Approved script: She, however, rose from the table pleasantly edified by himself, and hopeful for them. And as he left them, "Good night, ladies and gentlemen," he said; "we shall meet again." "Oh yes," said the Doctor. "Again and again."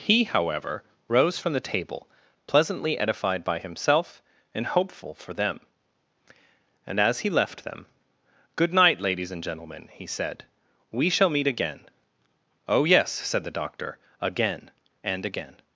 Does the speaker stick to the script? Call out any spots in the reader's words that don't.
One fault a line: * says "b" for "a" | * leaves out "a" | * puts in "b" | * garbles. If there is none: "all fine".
* says "He" for "She"